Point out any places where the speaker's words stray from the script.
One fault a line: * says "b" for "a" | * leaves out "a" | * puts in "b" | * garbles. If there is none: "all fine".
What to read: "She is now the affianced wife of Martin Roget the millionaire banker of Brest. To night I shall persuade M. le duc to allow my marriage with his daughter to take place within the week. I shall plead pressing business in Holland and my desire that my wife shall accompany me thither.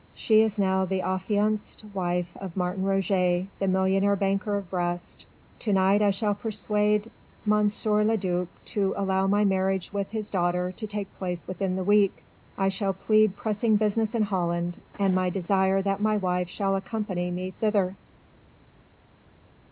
all fine